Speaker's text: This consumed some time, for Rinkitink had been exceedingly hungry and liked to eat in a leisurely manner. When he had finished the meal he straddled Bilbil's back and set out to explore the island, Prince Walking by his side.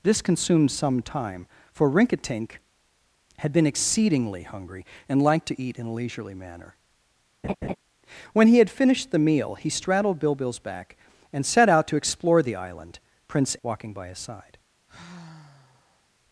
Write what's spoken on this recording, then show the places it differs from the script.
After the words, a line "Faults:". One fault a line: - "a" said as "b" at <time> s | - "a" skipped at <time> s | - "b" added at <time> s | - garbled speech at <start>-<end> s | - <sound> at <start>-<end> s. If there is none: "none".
This consumed some time, for Rinkitink had been exceedingly hungry and liked to eat in a leisurely manner. When he had finished the meal he straddled Bilbil's back and set out to explore the island, Prince Walking by his side.
Faults:
- laugh at 7.4-7.8 s
- sigh at 14.9-16.1 s